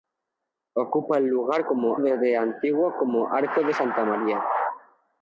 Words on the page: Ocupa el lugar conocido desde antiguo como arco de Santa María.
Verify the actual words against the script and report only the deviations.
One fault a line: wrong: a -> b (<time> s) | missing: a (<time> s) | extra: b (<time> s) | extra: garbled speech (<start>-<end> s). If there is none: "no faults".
wrong: conocido -> como (1.7 s)